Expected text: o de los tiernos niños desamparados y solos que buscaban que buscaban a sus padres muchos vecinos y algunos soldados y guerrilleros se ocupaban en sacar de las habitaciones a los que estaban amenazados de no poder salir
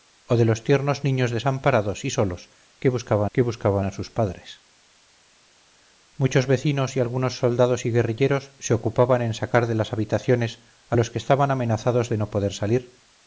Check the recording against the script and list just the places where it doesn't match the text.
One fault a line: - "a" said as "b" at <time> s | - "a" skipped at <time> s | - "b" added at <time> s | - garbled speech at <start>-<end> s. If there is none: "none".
none